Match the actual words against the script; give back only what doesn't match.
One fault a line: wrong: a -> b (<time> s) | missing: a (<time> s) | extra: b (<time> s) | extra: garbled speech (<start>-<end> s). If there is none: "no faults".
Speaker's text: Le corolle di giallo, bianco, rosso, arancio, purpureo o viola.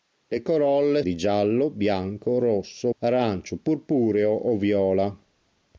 no faults